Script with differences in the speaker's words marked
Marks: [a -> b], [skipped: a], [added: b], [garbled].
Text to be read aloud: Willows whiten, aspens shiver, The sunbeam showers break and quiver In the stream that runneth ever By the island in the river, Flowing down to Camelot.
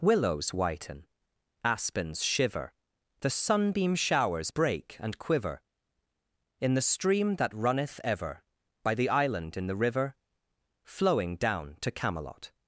Willows whiten, aspens shiver, The sunbeam showers break and quiver In the stream that runneth ever By the island in the river, Flowing down to Camelot.